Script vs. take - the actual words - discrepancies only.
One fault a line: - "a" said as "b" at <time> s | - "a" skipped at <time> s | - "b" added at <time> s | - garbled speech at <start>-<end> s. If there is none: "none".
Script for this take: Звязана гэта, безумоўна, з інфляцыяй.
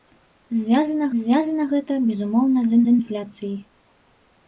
- "звязана" added at 1.2 s
- "з" added at 2.9 s